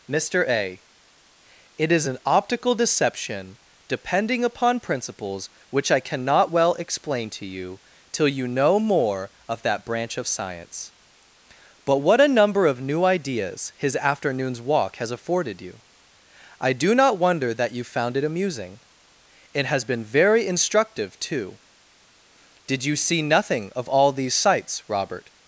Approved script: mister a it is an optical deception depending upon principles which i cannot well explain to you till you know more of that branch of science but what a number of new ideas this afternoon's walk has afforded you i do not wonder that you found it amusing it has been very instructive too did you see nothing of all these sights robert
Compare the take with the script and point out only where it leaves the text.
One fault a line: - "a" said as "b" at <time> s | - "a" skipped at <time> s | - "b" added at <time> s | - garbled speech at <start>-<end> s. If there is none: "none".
- "this" said as "his" at 13.8 s